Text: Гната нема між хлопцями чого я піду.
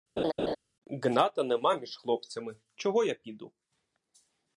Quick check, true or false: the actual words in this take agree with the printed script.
true